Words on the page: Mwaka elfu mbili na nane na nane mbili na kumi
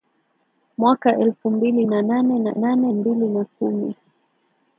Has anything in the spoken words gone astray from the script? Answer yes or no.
no